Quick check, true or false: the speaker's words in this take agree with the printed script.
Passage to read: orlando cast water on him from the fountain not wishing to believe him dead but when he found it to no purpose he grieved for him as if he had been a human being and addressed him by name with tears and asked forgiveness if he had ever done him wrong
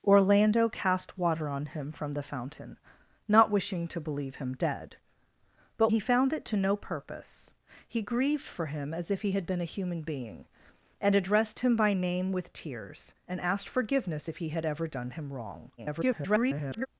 false